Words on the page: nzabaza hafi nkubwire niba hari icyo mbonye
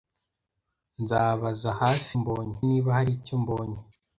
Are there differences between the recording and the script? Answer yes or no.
yes